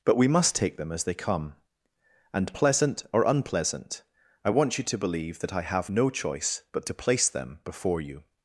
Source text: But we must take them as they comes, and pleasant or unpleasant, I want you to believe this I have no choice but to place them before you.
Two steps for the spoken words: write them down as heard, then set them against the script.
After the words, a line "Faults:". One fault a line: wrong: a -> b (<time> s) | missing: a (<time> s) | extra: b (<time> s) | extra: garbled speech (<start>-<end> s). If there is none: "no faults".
But we must take them as they come, and pleasant or unpleasant, I want you to believe that I have no choice but to place them before you.
Faults:
wrong: comes -> come (1.1 s)
wrong: this -> that (5.4 s)